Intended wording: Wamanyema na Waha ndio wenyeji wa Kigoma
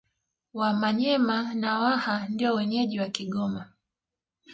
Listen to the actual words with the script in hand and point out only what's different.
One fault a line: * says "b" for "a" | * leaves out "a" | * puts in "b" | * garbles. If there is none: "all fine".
all fine